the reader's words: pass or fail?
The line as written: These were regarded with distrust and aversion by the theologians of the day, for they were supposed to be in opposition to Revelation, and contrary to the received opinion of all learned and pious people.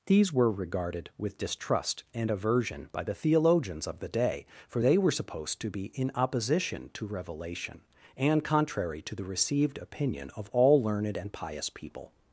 pass